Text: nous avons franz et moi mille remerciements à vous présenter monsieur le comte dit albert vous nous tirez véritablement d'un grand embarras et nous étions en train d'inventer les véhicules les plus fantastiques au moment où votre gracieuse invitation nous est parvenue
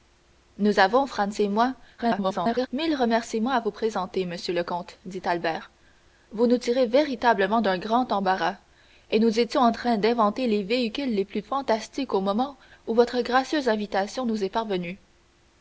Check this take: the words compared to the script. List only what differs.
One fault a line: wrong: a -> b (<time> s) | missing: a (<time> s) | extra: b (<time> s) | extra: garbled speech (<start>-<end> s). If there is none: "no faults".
extra: garbled speech (2.0-2.7 s)